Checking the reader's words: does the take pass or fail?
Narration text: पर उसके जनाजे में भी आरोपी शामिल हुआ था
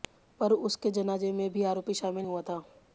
pass